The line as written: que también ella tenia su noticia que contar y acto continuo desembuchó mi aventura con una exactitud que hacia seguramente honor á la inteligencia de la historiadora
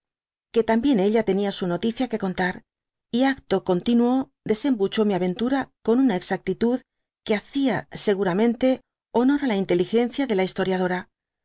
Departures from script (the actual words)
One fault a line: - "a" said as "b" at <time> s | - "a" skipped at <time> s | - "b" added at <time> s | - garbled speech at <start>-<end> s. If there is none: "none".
none